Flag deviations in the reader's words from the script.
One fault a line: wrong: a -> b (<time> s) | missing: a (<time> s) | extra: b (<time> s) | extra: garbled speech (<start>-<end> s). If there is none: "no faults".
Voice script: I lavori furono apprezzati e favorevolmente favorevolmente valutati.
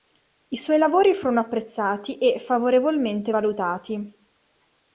extra: suoi (0.6 s)
missing: favorevolmente (3.3 s)